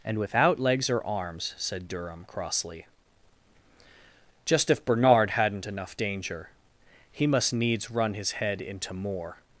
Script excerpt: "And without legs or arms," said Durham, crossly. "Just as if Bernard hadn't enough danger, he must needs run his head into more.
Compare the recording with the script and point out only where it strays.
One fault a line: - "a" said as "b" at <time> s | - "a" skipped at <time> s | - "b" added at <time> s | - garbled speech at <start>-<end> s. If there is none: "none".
- "as" skipped at 4.7 s